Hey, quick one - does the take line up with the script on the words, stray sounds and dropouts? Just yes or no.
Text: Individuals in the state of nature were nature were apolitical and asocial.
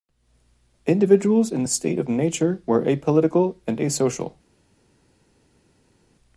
no